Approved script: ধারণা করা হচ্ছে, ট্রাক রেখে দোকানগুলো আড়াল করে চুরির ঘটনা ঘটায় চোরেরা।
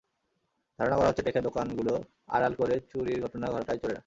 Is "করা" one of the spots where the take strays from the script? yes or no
no